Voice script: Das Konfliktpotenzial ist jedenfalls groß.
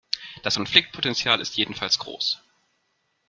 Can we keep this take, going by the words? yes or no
yes